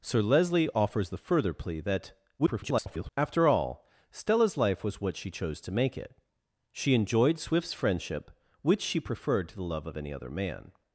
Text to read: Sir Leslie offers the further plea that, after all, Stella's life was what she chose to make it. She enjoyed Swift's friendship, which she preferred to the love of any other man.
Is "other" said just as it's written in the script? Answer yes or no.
yes